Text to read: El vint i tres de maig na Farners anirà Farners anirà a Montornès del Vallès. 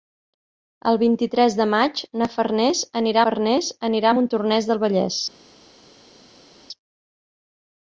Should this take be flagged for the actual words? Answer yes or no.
no